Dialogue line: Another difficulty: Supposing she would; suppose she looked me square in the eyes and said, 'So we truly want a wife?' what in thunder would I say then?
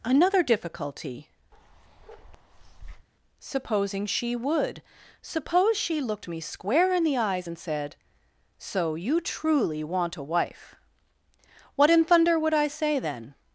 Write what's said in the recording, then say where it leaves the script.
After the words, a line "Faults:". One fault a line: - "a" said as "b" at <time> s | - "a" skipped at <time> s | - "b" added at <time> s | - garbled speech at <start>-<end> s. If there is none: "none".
Another difficulty: Supposing she would; suppose she looked me square in the eyes and said, 'So you truly want a wife?' what in thunder would I say then?
Faults:
- "we" said as "you" at 8.9 s